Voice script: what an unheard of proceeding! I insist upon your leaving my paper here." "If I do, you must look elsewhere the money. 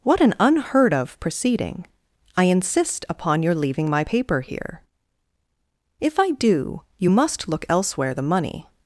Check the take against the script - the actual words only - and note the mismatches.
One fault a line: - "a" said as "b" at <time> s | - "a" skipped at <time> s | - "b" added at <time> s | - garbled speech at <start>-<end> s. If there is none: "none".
none